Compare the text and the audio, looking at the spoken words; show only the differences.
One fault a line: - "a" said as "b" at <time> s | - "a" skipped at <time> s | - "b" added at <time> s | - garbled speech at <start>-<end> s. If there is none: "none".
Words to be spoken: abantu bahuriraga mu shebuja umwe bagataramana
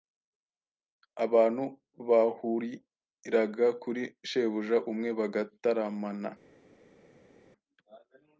- "mu" said as "kuri" at 3.8 s